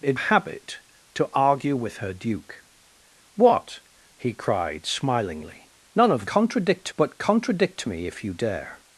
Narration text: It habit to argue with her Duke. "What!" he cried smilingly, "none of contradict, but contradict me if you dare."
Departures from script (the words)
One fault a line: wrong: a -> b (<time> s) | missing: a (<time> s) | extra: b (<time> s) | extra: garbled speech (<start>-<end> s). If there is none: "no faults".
no faults